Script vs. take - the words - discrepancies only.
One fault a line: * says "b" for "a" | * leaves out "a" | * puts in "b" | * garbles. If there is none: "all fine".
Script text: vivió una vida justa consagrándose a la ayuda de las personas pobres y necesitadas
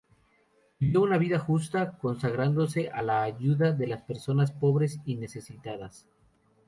all fine